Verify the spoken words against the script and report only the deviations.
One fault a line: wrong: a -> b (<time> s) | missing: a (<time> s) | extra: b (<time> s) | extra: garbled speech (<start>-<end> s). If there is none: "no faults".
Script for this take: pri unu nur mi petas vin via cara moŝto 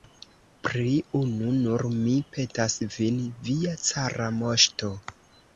no faults